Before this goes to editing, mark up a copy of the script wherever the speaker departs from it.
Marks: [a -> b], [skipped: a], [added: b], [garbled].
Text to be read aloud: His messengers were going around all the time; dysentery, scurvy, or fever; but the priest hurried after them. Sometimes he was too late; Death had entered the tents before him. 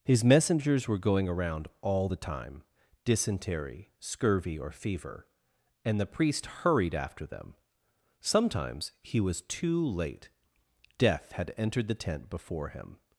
His messengers were going around all the time; dysentery, scurvy, or fever; [but -> and] the priest hurried after them. Sometimes he was too late; Death had entered the [tents -> tent] before him.